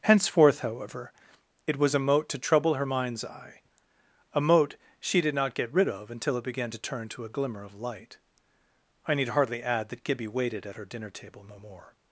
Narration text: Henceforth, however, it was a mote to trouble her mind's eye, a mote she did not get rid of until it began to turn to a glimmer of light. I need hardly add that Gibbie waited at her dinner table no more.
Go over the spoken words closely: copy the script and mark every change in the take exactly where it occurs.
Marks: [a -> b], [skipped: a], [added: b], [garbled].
Henceforth, however, it was a mote to trouble her mind's eye, a mote she did not get rid of until it began to turn to a glimmer of light. I need hardly add that Gibbie waited at her dinner table no more.